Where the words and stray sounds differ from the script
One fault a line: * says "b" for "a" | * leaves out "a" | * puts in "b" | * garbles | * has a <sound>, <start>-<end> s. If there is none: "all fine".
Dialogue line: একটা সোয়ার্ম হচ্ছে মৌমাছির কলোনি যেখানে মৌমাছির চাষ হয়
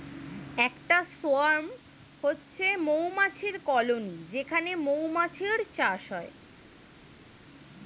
all fine